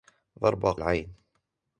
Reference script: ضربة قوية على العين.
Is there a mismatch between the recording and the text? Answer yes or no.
yes